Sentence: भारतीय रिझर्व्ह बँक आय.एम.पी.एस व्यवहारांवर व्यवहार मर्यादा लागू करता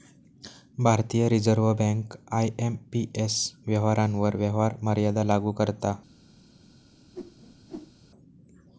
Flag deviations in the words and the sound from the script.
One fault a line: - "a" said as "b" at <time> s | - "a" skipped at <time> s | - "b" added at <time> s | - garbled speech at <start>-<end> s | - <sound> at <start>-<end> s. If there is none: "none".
- whoosh at 7.1-7.9 s